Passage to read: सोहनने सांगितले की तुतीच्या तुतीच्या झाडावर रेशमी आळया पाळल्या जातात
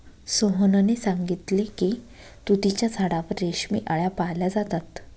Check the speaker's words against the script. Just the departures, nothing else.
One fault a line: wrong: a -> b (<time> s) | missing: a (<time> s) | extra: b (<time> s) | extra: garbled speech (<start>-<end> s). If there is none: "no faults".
missing: तुतीच्या (2.9 s)